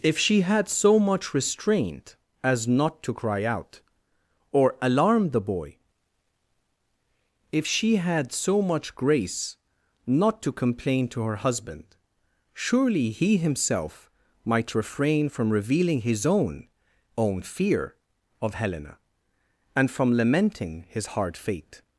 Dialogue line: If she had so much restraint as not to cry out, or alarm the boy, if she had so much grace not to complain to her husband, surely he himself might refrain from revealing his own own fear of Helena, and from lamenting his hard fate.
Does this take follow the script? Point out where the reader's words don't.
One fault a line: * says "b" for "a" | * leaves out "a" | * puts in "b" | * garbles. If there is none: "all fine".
all fine